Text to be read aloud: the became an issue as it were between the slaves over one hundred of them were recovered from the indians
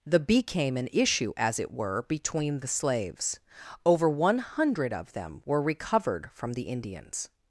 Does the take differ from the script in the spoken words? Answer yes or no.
no